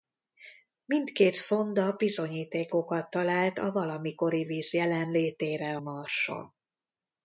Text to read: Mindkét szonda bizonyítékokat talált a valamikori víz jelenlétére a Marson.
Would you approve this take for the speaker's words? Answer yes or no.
no